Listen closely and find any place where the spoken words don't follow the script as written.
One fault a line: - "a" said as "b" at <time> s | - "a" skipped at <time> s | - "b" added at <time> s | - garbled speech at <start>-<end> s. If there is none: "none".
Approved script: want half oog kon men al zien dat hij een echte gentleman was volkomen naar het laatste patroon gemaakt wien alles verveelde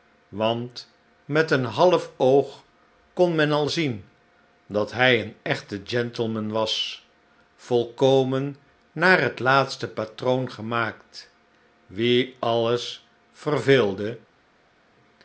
- "met een" added at 1.2 s